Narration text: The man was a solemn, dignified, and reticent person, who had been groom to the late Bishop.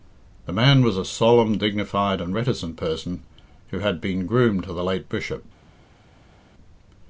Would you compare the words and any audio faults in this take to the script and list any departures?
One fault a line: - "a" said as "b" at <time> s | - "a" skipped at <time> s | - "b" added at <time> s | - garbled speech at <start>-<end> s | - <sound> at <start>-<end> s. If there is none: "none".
none